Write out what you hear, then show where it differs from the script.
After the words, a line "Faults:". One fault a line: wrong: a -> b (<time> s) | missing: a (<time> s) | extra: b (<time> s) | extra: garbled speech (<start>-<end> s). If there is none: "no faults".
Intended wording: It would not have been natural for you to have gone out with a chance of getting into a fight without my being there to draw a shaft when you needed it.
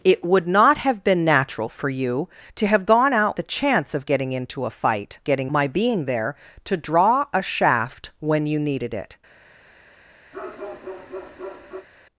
It would not have been natural for you to have gone out a chance of getting into a fight getting my being there to draw a shaft when you needed it.
Faults:
missing: with (3.4 s)
wrong: without -> getting (5.2 s)